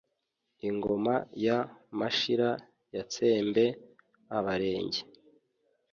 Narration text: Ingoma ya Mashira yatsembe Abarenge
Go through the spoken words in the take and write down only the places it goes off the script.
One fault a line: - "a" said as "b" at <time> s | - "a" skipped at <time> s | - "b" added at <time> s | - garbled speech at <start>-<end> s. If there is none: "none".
none